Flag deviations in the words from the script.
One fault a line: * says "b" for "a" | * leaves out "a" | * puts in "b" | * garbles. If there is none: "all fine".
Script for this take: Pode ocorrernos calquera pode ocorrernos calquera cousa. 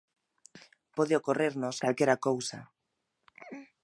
* leaves out "pode ocorrernos calquera"